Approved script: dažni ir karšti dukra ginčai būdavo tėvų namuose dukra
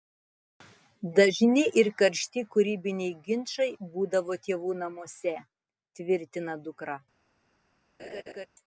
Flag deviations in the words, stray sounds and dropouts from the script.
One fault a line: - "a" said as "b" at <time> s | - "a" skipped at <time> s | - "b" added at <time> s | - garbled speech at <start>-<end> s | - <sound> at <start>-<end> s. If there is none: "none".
- "dukra" said as "kūrybiniai" at 2.5 s
- "tvirtina" added at 6.0 s
- laugh at 8.0-8.5 s